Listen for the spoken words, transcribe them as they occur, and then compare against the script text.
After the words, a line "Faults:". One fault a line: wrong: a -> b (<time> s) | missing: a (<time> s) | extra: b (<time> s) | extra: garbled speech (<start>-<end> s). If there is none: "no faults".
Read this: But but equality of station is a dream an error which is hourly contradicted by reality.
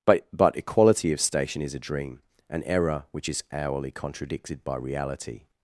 But but equality of station is a dream an error which is hourly contradicted by reality.
Faults:
no faults